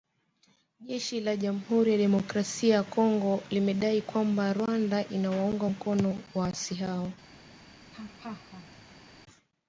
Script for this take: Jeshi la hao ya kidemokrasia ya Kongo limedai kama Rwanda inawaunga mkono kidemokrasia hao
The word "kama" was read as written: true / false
false